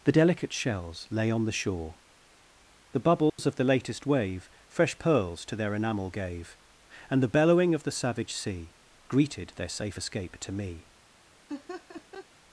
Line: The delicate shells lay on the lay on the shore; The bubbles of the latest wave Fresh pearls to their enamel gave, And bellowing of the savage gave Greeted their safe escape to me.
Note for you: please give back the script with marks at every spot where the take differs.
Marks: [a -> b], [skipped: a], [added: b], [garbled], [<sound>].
The delicate shells lay on the [skipped: lay on the] shore; The bubbles [dropout] of the latest wave Fresh pearls to their enamel gave, And [added: the] bellowing of the savage [gave -> sea] Greeted their safe escape to me. [laugh]